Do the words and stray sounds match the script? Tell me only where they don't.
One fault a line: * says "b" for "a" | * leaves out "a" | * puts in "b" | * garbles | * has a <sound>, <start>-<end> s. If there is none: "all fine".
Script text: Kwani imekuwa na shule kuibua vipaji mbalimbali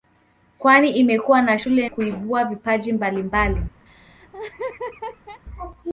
* has a laugh, 3.9-5.4 s